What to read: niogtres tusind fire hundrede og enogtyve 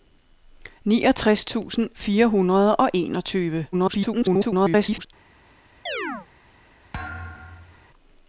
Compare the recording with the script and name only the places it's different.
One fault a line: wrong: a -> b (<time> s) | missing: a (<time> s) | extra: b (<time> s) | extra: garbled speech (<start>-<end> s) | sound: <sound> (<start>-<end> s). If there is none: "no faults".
extra: garbled speech (3.7-5.1 s)
sound: chirp (5.9-6.3 s)
sound: thud (6.9-7.9 s)